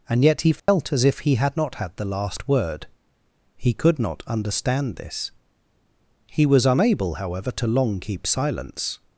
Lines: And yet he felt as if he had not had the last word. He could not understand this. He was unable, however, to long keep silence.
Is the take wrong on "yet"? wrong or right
right